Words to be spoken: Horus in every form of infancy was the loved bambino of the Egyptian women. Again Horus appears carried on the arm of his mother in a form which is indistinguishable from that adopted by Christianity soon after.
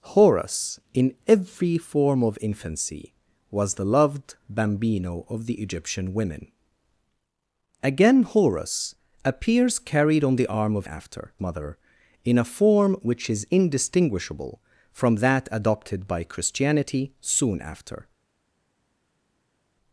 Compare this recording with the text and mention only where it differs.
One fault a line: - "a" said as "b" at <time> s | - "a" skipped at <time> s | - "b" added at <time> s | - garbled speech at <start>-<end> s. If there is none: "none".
- "his" said as "after" at 10.9 s